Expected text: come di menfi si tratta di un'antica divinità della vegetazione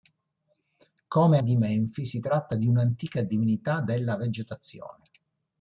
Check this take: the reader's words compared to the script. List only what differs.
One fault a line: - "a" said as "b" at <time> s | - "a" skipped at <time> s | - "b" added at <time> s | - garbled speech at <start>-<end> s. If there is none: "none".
none